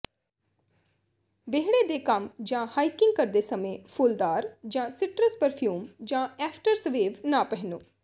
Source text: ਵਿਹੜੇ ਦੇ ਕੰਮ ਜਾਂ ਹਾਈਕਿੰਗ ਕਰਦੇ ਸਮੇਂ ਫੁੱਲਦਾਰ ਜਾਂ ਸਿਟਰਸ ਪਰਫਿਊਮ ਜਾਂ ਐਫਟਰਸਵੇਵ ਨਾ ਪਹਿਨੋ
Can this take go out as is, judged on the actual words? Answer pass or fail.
pass